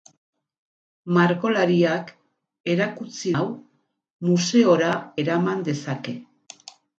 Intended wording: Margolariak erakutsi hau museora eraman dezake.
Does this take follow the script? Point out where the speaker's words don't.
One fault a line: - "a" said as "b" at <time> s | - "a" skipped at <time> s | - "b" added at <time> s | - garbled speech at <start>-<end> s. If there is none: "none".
none